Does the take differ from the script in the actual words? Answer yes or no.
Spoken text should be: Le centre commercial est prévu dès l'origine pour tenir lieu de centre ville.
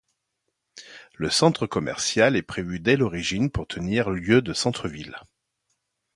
no